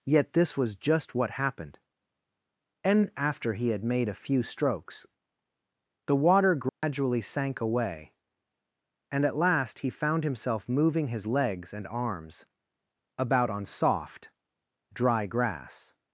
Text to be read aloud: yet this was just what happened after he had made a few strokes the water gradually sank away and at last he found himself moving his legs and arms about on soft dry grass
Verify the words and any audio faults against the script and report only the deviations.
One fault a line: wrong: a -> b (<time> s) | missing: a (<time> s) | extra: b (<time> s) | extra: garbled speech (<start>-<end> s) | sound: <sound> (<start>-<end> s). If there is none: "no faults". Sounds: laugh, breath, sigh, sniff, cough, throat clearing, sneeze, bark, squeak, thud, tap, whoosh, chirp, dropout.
extra: and (2.8 s)
sound: dropout (6.7-6.8 s)